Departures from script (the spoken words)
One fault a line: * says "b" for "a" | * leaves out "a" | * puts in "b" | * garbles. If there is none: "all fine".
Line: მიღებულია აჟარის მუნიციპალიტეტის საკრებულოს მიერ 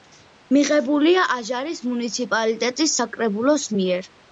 all fine